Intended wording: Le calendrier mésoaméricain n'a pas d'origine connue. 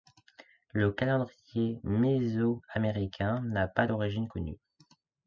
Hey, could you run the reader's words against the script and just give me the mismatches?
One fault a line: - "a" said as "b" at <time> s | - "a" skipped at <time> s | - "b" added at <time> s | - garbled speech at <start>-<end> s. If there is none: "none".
none